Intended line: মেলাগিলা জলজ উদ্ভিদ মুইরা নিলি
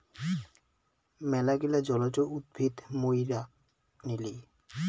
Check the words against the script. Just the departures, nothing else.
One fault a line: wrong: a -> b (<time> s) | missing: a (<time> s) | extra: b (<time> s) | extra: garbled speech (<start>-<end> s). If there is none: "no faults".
no faults